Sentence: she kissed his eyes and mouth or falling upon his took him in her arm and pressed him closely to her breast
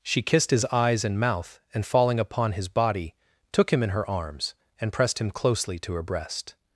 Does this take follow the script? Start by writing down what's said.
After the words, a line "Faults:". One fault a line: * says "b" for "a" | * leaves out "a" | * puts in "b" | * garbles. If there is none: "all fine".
she kissed his eyes and mouth and falling upon his body took him in her arms and pressed him closely to her breast
Faults:
* says "and" for "or"
* puts in "body"
* says "arms" for "arm"